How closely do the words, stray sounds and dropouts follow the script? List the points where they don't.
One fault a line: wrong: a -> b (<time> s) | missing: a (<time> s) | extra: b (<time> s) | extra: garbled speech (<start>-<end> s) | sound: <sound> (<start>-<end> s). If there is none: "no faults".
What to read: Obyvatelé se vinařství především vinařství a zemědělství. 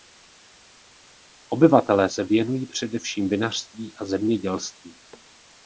wrong: vinařství -> věnují (2.2 s)